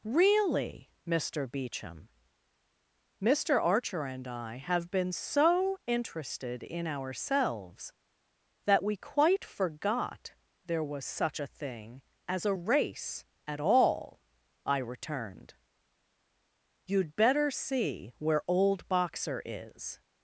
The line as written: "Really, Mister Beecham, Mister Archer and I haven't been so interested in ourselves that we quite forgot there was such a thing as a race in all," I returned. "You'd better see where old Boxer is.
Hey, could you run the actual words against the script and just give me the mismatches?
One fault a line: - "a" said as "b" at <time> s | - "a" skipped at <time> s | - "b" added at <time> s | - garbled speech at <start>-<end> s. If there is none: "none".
- "haven't" said as "have" at 4.5 s
- "in" said as "at" at 13.5 s